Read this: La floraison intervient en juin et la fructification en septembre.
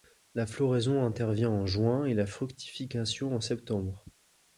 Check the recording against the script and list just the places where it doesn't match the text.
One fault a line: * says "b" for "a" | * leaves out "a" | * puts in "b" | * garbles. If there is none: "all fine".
all fine